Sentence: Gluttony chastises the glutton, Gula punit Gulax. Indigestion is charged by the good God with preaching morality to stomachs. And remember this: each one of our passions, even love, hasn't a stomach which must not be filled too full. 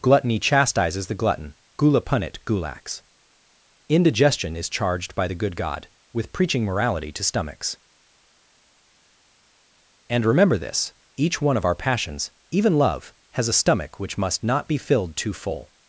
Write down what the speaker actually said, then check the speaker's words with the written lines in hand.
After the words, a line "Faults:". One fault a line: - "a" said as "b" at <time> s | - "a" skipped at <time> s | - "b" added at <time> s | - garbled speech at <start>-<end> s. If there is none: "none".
Gluttony chastises the glutton, Gula punit Gulax. Indigestion is charged by the good God with preaching morality to stomachs. And remember this: each one of our passions, even love, has a stomach which must not be filled too full.
Faults:
- "hasn't" said as "has" at 13.3 s